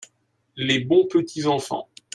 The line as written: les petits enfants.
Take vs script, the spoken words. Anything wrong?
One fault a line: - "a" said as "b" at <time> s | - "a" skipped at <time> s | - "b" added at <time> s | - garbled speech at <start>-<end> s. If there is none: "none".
- "bons" added at 0.8 s